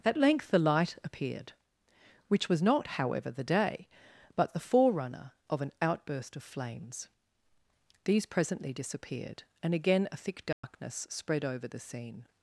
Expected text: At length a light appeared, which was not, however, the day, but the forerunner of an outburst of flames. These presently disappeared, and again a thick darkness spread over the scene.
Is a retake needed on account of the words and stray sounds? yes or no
yes